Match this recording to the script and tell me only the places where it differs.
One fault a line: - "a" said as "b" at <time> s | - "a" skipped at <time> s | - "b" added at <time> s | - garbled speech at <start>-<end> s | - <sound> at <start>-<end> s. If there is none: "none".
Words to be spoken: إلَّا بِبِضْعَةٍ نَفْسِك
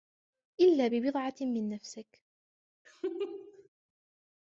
- "مِنْ" added at 1.4 s
- laugh at 2.8-3.7 s